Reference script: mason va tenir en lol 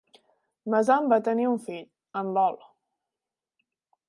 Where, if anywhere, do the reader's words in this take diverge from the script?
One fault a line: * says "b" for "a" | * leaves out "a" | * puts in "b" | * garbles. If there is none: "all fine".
* puts in "un fill"